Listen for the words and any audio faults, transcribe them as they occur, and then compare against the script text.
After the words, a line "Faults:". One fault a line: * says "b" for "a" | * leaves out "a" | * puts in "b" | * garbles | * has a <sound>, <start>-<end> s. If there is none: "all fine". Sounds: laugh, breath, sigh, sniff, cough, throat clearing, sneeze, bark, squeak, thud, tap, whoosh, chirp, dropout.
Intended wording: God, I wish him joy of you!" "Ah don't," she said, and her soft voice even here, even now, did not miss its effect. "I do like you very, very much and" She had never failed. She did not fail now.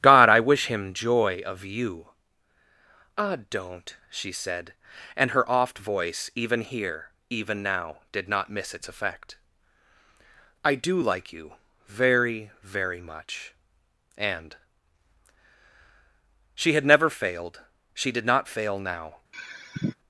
God, I wish him joy of you!" "Ah don't," she said, and her oft voice even here, even now, did not miss its effect. "I do like you very, very much and" She had never failed. She did not fail now.
Faults:
* says "oft" for "soft"
* has a sigh, 19.3-20.0 s